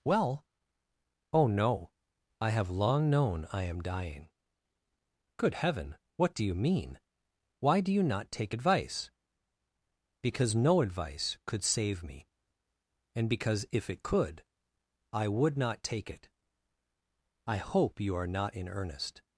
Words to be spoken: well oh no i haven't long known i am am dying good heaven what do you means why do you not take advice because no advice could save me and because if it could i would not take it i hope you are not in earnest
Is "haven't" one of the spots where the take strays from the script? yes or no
yes